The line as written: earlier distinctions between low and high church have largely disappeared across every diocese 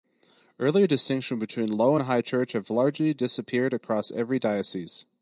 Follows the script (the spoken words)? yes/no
yes